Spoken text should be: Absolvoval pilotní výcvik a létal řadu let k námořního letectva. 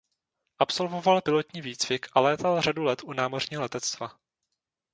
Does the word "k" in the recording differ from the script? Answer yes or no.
yes